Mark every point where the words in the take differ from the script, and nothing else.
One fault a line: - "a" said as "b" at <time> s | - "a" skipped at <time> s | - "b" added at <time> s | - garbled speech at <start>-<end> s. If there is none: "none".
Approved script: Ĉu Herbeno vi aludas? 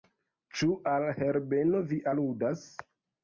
- "al" added at 0.9 s